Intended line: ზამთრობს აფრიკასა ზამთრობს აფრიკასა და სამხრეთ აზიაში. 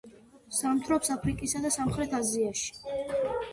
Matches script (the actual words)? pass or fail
fail